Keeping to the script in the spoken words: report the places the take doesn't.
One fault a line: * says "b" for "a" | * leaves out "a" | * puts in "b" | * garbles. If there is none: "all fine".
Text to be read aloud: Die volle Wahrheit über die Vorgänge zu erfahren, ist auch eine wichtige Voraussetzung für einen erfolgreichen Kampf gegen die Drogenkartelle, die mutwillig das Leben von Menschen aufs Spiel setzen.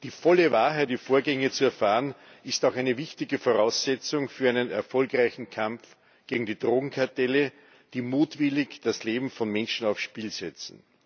* leaves out "über"